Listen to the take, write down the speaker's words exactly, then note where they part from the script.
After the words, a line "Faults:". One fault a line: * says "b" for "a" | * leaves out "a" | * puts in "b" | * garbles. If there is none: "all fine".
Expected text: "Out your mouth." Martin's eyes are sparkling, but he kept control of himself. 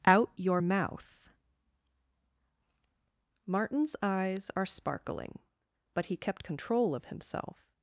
"Out your mouth." Martin's eyes are sparkling, but he kept control of himself.
Faults:
all fine